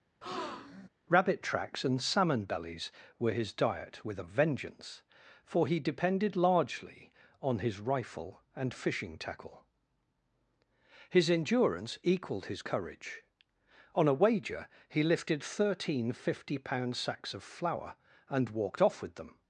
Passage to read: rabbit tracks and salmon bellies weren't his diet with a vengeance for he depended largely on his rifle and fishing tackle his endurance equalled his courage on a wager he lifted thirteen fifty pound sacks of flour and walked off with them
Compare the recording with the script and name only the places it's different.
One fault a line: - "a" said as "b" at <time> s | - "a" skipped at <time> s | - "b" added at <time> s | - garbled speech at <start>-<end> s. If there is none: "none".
- "weren't" said as "were" at 3.2 s